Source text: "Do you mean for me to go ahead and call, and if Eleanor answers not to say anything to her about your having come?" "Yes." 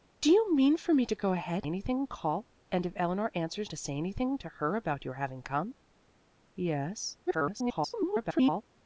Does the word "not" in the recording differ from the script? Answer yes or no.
yes